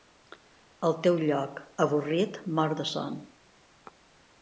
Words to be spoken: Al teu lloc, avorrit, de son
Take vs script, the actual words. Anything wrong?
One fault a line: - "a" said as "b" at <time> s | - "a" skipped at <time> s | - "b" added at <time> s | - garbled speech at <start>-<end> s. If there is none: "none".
- "mort" added at 2.6 s